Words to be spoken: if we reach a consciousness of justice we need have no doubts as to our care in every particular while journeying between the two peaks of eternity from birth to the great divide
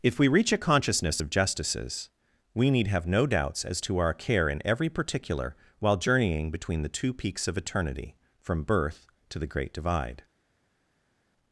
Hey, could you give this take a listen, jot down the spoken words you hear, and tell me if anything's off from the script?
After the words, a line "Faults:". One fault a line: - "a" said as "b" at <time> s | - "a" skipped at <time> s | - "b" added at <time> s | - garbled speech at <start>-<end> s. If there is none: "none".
if we reach a consciousness of justices we need have no doubts as to our care in every particular while journeying between the two peaks of eternity from birth to the great divide
Faults:
- "justice" said as "justices" at 1.3 s